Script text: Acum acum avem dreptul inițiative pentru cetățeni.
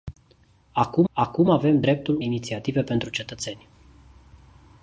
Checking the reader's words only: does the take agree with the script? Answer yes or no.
yes